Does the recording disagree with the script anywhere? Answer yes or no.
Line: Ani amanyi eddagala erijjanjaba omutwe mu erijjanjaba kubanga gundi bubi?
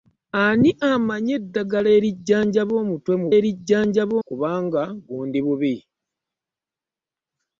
no